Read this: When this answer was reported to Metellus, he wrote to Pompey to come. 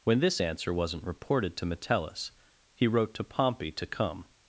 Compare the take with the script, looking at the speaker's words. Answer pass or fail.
fail